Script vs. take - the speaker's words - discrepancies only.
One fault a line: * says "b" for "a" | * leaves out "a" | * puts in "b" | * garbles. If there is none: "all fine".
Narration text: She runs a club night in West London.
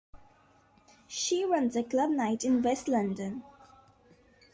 all fine